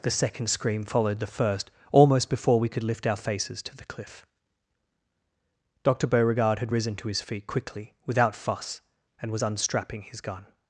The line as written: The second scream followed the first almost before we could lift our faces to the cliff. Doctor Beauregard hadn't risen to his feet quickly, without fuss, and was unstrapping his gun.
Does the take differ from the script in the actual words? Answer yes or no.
yes